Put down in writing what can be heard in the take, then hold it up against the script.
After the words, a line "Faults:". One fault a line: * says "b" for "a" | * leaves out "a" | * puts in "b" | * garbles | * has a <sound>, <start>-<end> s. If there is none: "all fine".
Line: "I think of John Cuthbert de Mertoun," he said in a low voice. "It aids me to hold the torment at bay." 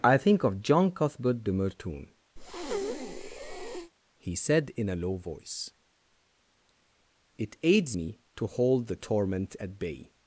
"I think of John Cuthbert de Mertoun," he said in a low voice. "It aids me to hold the torment at bay."
Faults:
* has a breath, 2.4-3.9 s